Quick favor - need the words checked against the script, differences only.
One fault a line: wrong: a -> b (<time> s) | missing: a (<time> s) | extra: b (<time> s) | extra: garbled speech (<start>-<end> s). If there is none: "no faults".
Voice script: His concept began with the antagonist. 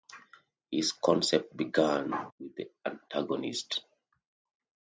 no faults